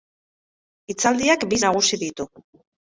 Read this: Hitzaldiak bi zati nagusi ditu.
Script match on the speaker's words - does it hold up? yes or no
no